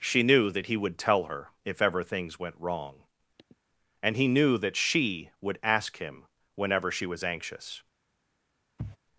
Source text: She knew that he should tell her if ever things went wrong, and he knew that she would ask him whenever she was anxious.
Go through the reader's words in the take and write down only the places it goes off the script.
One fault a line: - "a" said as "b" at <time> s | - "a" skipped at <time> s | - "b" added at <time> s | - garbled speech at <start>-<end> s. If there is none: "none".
- "should" said as "would" at 0.8 s